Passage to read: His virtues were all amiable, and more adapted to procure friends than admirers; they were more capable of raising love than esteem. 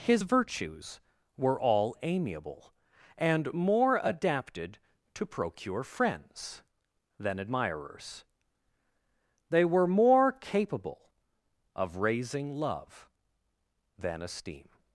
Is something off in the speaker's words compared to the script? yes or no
no